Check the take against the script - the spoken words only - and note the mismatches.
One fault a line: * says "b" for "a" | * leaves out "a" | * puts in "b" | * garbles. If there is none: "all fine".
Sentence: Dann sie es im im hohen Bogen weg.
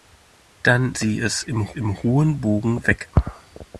all fine